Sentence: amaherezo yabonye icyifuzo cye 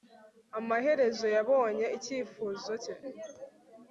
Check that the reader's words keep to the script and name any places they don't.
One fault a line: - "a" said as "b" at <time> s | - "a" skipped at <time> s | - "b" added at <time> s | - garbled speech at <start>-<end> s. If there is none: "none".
none